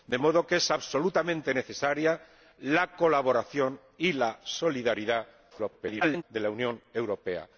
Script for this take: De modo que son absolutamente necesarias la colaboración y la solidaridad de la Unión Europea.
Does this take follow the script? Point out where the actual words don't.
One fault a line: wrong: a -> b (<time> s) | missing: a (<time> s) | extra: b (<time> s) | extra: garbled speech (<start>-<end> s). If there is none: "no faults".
extra: garbled speech (5.5-6.2 s)